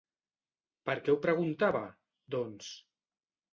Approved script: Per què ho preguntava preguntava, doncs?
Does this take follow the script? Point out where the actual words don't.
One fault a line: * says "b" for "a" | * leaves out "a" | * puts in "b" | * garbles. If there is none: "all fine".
* leaves out "preguntava"